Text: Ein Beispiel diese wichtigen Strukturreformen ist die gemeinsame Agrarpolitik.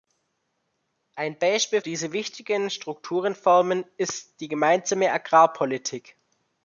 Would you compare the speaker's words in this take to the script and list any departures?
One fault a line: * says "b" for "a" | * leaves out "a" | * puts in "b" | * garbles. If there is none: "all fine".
all fine